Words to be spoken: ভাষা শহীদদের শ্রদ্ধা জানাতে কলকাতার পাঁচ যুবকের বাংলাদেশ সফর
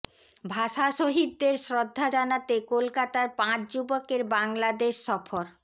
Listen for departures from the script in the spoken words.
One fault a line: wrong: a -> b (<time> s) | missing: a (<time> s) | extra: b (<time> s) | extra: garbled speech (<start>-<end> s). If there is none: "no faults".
no faults